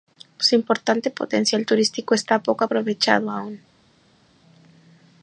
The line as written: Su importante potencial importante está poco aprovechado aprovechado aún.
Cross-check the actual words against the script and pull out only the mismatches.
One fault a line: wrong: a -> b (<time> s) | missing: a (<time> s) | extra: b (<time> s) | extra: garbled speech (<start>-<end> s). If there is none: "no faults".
wrong: importante -> turístico (1.6 s)
missing: aprovechado (3.3 s)